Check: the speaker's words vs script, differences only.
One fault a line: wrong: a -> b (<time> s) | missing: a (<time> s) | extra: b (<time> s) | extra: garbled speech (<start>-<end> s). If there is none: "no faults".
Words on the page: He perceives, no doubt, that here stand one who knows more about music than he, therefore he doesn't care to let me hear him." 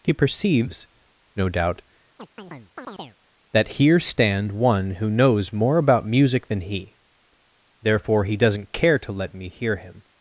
no faults